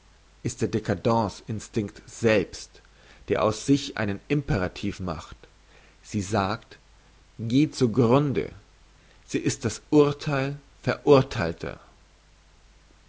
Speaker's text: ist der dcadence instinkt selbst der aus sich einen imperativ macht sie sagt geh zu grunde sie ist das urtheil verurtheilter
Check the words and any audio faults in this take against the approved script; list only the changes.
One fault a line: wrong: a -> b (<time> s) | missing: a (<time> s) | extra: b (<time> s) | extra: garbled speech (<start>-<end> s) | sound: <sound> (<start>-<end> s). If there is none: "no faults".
no faults